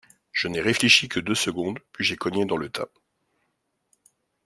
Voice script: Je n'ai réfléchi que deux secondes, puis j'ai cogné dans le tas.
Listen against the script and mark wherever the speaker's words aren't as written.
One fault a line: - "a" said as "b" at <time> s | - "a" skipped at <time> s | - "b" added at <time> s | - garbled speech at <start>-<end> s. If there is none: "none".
none